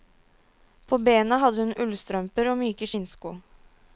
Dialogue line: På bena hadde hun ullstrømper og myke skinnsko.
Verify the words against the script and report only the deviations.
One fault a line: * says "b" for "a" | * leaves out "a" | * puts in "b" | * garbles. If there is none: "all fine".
all fine